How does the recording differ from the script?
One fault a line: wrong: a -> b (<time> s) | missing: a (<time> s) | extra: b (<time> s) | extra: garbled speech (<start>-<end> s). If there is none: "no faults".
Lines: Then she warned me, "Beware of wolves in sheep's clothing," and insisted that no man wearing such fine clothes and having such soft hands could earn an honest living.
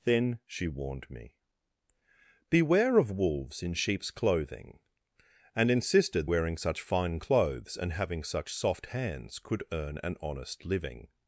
missing: that no man (6.3 s)